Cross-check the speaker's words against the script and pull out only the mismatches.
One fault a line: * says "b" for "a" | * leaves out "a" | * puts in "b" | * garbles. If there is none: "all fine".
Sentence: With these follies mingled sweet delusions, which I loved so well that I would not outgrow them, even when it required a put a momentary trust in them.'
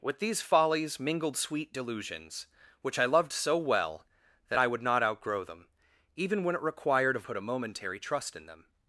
all fine